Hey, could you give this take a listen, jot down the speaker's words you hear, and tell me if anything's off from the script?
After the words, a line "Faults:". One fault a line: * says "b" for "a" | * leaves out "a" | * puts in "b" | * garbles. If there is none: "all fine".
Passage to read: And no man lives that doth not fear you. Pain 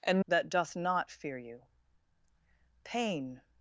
And that doth not fear you. Pain
Faults:
* leaves out "no man lives"